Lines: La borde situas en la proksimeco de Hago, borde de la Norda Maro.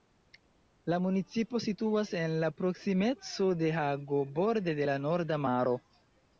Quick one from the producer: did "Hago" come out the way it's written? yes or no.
yes